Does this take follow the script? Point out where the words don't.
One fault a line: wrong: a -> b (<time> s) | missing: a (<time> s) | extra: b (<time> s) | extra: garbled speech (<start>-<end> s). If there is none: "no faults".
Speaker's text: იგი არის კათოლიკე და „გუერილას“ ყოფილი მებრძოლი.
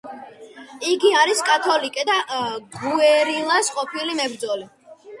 no faults